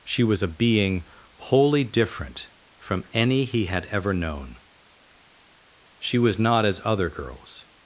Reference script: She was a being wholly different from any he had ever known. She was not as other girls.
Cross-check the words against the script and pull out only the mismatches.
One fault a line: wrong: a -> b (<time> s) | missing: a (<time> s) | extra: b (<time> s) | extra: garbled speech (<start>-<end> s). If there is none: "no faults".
no faults